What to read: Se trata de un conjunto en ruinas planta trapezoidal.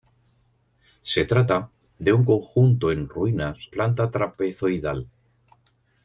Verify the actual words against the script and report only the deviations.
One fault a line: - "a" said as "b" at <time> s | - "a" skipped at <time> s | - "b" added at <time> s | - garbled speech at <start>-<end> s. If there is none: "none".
none